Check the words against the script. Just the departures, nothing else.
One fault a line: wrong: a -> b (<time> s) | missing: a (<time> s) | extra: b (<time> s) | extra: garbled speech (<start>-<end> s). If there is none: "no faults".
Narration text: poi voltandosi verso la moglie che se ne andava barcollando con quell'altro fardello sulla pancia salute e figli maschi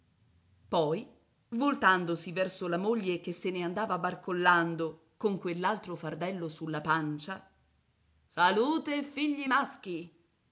no faults